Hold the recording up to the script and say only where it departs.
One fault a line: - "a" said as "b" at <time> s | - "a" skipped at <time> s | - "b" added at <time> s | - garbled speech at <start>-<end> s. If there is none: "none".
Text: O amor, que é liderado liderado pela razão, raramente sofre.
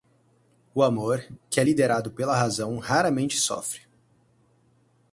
- "liderado" skipped at 2.1 s